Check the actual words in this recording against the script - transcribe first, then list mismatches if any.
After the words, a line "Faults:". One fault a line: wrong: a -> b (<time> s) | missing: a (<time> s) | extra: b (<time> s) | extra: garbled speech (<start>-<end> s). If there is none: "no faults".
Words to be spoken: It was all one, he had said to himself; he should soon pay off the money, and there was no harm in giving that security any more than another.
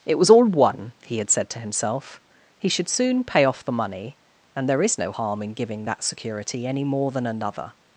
It was all one, he had said to himself; he should soon pay off the money, and there is no harm in giving that security any more than another.
Faults:
wrong: was -> is (4.8 s)